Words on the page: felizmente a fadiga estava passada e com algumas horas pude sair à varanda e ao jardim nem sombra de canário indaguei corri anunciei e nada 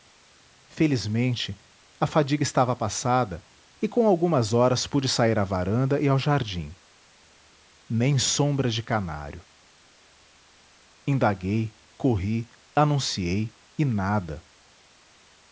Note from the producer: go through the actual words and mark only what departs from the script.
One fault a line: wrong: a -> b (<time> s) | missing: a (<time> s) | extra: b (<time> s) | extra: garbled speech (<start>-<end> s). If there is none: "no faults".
no faults